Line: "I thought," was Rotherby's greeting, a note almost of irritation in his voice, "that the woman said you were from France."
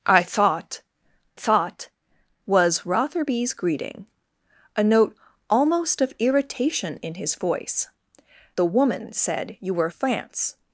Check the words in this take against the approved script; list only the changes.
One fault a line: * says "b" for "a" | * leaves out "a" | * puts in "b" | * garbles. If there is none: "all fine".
* puts in "thought"
* leaves out "that"
* leaves out "from"